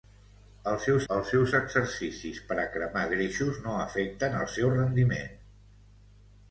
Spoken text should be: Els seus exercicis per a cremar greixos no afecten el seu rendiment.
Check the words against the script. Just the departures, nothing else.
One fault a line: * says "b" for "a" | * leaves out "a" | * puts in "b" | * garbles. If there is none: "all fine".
* puts in "els seus"